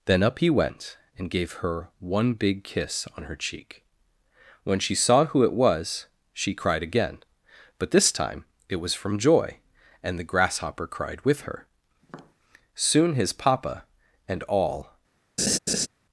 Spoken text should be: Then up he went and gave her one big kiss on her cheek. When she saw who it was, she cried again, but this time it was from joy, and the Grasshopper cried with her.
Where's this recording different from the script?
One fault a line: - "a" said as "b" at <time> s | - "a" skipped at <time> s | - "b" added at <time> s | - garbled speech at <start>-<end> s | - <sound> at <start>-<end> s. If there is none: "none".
- tap at 12.0-12.3 s
- "Soon his papa and all" added at 12.8 s
- laugh at 15.4-15.9 s